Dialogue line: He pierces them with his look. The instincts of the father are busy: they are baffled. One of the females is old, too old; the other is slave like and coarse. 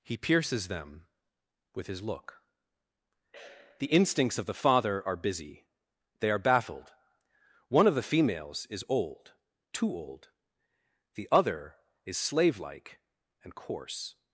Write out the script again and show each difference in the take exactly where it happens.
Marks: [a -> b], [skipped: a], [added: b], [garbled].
He pierces them with his look. The instincts of the father are busy: they are baffled. One of the females is old, too old; the other is slave like and coarse.